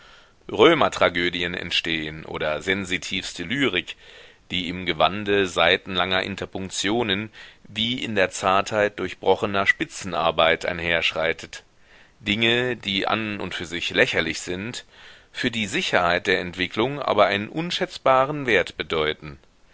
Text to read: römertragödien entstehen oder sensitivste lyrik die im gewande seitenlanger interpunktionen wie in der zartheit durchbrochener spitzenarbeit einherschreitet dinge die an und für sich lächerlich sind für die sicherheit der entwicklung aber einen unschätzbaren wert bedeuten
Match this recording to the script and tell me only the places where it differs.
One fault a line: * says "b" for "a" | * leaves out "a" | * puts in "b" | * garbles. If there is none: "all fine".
all fine